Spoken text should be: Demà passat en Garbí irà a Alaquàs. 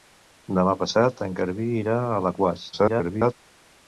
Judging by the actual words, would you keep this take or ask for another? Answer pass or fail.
fail